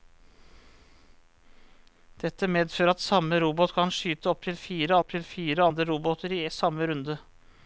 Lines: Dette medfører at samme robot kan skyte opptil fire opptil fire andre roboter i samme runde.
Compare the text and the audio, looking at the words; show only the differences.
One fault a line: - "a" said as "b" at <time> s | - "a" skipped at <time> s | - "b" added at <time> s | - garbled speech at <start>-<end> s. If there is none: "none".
none